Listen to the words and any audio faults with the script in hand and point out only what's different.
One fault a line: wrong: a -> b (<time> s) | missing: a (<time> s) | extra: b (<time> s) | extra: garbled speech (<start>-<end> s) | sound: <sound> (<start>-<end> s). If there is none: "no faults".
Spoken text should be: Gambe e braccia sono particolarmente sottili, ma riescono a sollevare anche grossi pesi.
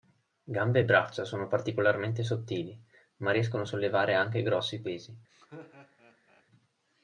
sound: laugh (5.3-6.4 s)